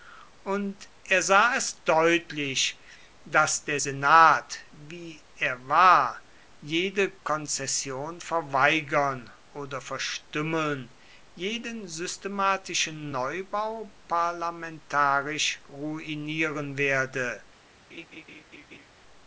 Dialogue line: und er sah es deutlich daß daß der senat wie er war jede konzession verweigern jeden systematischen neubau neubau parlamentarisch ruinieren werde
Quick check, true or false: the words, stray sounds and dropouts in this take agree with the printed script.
false